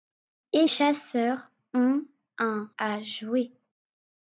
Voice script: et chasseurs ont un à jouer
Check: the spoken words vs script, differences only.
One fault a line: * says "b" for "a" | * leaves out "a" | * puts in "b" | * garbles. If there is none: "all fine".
all fine